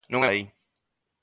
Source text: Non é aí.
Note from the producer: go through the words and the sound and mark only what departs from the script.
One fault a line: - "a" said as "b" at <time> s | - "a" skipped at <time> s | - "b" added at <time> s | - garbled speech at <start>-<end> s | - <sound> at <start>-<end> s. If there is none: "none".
none